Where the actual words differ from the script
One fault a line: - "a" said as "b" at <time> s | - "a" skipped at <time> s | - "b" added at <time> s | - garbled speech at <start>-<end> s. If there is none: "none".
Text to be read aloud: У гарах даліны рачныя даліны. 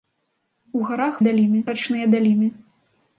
none